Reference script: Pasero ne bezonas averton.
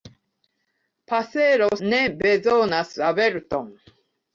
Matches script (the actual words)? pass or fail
pass